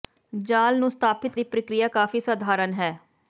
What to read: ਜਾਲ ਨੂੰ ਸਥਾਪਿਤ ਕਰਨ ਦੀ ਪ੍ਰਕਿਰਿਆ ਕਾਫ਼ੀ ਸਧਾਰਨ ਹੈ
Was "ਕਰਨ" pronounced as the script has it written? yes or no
no